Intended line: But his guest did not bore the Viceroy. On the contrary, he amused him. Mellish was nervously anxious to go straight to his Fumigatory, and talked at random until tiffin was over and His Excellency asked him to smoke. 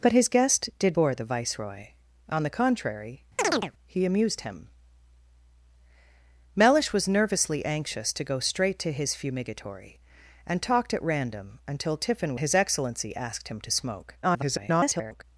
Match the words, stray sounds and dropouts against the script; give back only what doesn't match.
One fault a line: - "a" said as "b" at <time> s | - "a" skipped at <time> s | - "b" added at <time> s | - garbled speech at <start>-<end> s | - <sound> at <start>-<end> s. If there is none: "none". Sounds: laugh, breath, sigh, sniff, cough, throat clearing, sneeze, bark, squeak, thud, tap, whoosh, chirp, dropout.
- "not" skipped at 1.0 s
- chirp at 3.4-3.7 s
- "was over and" skipped at 12.3 s
- garbled speech at 14.2-15.2 s